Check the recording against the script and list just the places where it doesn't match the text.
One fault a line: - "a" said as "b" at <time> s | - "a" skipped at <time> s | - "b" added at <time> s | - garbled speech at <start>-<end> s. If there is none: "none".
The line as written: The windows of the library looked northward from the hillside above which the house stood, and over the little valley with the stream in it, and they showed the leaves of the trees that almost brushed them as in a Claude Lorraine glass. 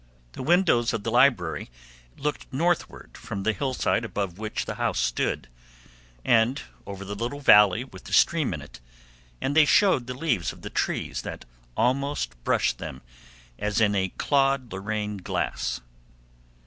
none